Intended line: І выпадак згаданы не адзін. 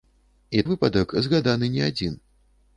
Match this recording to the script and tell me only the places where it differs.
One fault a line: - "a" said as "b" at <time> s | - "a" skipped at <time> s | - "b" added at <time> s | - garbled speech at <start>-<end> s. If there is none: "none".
none